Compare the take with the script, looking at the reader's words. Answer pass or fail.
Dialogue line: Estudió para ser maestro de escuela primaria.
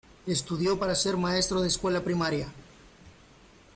pass